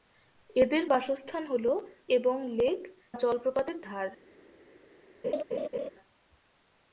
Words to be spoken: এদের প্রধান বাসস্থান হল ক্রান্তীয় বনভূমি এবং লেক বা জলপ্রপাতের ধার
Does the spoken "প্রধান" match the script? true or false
false